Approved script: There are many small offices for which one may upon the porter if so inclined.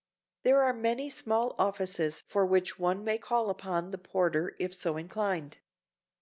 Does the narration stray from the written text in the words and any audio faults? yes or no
yes